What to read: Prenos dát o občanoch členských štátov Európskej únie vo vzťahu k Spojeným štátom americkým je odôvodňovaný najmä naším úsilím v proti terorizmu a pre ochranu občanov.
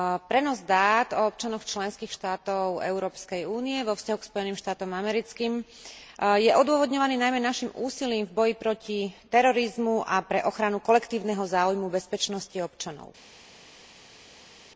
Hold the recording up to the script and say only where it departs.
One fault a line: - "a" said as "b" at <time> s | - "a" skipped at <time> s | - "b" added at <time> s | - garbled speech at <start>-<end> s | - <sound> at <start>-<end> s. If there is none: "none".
- "boji" added at 8.3 s
- "kolektívneho záujmu bezpečnosti" added at 10.8 s